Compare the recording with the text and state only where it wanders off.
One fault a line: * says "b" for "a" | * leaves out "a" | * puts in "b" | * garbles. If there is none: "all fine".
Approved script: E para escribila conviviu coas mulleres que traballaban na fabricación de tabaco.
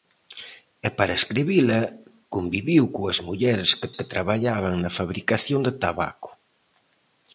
* puts in "que"